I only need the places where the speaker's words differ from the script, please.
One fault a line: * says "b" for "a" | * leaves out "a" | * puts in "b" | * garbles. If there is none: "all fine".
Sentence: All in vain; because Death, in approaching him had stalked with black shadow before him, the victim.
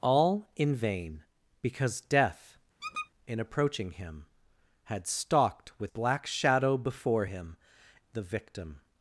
all fine